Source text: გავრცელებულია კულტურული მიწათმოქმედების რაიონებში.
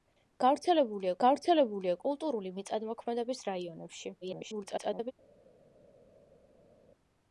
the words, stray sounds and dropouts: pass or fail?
fail